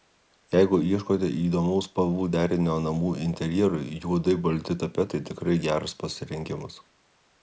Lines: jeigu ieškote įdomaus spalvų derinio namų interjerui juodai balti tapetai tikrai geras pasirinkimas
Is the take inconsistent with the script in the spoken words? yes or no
no